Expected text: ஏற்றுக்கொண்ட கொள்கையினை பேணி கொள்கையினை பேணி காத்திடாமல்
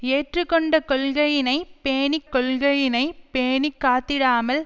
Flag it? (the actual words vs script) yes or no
no